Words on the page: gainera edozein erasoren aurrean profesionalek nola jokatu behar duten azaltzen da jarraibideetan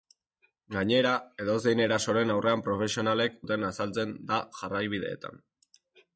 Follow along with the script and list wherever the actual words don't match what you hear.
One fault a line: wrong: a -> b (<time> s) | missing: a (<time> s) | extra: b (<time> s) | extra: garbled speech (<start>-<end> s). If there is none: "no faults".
missing: nola jokatu behar (3.4 s)